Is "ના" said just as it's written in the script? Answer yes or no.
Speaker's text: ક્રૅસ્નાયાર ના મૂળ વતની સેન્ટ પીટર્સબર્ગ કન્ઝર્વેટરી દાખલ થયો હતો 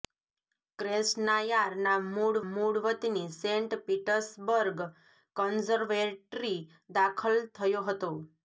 yes